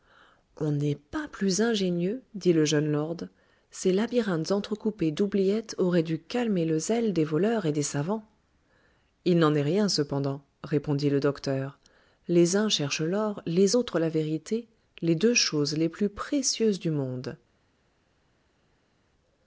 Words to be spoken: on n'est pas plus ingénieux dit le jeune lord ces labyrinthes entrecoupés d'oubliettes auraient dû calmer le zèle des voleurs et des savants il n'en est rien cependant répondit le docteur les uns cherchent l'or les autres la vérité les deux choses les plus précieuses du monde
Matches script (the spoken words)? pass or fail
pass